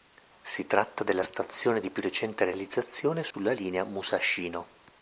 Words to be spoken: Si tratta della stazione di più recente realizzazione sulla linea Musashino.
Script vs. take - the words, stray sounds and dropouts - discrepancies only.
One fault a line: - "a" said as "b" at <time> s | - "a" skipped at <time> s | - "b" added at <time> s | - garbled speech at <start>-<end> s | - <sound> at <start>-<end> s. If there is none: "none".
- dropout at 3.3-3.3 s